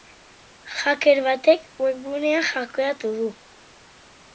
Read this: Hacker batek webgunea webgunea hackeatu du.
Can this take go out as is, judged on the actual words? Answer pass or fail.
fail